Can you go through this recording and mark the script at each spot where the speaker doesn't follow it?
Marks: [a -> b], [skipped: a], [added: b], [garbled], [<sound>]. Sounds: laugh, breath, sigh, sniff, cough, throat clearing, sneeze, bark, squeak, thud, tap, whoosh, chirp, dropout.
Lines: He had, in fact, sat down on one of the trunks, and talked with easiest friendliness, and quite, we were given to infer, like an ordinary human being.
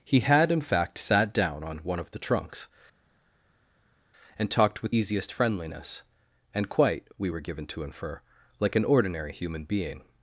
He had, in fact, sat down on one of the trunks, and talked with easiest friendliness, and quite, we were given to infer, like an ordinary human being.